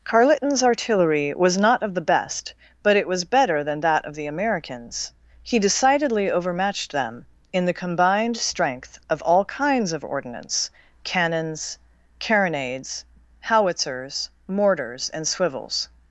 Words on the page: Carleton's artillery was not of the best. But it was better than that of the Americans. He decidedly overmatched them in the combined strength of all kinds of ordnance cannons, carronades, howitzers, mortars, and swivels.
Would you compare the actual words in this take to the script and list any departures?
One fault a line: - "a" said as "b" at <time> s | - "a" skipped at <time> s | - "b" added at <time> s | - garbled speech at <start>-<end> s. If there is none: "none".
none